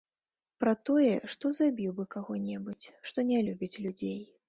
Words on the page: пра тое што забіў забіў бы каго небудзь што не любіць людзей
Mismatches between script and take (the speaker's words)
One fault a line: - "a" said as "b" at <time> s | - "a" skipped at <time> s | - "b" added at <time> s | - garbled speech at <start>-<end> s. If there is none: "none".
- "забіў" skipped at 1.9 s